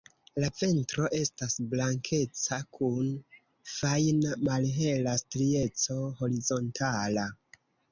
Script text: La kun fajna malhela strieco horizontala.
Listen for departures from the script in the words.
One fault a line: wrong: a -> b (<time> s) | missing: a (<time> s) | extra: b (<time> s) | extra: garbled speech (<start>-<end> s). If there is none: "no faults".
extra: ventro estas blankeca (0.6 s)